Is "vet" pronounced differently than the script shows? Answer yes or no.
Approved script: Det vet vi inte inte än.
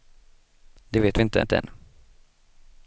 no